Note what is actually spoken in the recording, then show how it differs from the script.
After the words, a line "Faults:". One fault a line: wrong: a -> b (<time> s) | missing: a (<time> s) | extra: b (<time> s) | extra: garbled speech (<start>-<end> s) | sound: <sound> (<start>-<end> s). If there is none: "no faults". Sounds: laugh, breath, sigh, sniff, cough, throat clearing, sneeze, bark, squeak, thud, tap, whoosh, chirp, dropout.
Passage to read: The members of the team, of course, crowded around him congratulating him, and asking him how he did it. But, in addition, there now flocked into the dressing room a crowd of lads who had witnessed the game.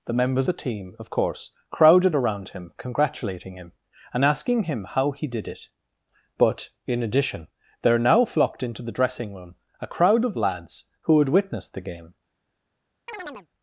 The members the team, of course, crowded around him congratulating him, and asking him how he did it. But, in addition, there now flocked into the dressing room a crowd of lads who had witnessed the game.
Faults:
missing: of (0.5 s)
sound: chirp (13.1-13.5 s)